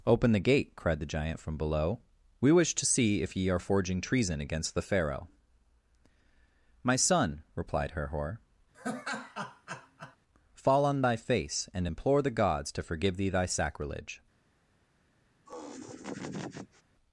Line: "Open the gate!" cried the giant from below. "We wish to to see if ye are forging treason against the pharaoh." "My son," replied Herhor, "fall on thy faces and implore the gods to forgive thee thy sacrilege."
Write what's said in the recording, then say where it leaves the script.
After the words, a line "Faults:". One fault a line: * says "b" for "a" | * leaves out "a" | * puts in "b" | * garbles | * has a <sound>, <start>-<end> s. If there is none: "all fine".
"Open the gate!" cried the giant from below. "We wish to see if ye are forging treason against the pharaoh." "My son," replied Herhor, "fall on thy face and implore the gods to forgive thee thy sacrilege."
Faults:
* leaves out "to"
* has a laugh, 8.7-10.2 s
* says "face" for "faces"
* has a laugh, 15.5-16.8 s